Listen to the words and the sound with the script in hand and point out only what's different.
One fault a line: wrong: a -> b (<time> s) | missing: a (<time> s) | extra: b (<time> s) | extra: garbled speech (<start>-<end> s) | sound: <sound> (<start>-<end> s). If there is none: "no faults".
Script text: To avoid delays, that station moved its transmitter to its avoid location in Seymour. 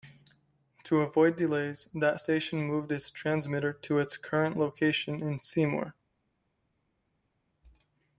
wrong: avoid -> current (4.2 s)